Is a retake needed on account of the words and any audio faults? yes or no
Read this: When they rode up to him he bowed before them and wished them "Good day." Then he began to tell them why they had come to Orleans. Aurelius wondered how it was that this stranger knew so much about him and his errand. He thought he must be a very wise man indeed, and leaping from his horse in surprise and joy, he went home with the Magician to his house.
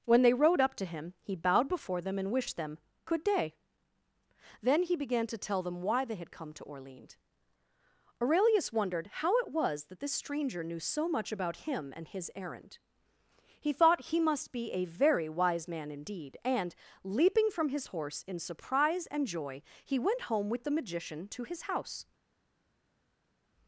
no